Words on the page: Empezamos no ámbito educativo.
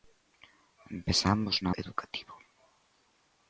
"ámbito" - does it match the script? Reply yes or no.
no